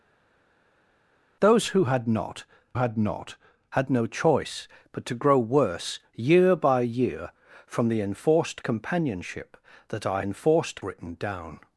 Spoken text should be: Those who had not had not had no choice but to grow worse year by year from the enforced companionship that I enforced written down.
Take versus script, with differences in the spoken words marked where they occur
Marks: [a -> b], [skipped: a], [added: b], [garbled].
Those who had not had not had no choice but to grow worse year by year from the enforced companionship that I enforced written down.